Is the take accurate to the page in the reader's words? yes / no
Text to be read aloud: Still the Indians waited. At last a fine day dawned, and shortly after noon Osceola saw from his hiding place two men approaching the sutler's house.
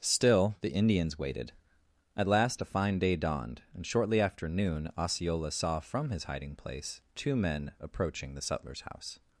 yes